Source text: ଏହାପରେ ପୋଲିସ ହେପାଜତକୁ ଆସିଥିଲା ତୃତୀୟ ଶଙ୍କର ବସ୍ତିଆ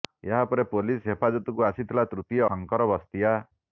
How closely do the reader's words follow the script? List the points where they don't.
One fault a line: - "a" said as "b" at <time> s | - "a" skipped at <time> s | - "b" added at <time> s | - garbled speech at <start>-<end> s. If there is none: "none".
none